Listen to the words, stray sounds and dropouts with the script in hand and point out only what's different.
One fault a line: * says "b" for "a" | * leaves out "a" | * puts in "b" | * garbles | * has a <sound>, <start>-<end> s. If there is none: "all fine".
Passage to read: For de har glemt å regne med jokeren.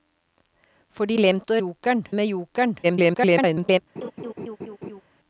* leaves out "har"
* says "jokeren" for "regne"
* garbles
* has a laugh, 4.0-5.0 s